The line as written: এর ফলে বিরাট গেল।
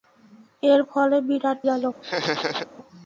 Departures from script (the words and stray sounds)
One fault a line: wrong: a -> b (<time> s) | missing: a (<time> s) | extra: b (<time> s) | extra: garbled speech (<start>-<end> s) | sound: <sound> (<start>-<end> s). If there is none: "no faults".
sound: laugh (2.0-2.7 s)